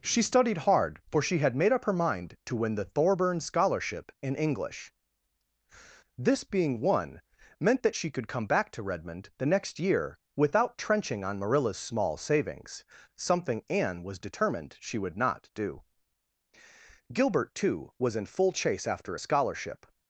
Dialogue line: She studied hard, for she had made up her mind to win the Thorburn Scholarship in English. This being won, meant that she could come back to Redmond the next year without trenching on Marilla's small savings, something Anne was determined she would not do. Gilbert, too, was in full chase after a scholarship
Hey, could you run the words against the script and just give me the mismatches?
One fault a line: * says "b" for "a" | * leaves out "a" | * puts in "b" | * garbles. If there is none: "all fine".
all fine